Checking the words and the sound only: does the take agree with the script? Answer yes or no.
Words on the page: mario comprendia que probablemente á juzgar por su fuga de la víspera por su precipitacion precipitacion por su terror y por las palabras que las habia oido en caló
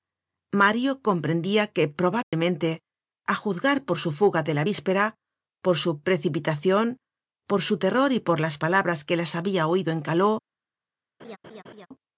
no